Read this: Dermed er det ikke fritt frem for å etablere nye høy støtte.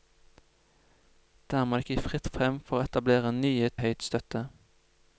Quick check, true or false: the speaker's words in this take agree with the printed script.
true